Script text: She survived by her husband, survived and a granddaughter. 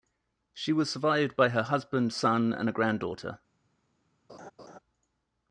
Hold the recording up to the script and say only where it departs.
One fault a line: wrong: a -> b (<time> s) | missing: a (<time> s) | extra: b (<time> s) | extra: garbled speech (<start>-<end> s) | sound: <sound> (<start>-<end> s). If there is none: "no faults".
extra: was (0.7 s)
wrong: survived -> son (2.1 s)
sound: laugh (4.3-4.8 s)